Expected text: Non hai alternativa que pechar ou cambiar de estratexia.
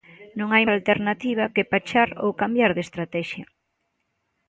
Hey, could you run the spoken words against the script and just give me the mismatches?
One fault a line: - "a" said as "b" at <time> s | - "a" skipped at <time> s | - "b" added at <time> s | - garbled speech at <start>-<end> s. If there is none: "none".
none